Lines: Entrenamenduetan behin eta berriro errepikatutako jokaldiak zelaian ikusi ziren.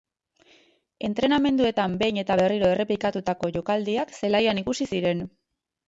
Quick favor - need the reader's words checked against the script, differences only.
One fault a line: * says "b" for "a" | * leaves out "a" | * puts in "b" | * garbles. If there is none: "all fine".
all fine